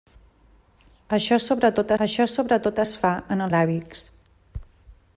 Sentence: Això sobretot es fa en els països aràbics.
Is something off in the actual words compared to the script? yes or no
yes